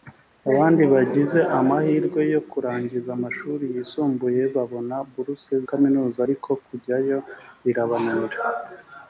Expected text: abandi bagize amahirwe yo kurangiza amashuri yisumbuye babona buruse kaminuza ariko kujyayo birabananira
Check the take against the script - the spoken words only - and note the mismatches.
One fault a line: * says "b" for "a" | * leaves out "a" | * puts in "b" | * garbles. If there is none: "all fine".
all fine